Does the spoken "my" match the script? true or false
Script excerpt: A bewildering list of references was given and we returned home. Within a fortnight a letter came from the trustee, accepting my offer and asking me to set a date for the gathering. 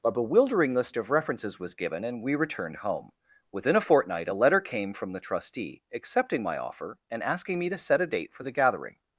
true